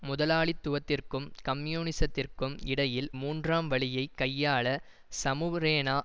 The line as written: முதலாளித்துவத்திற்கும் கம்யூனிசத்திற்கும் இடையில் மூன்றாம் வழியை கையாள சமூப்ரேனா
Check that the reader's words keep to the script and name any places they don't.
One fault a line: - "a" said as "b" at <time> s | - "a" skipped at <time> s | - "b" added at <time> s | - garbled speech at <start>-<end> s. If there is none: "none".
none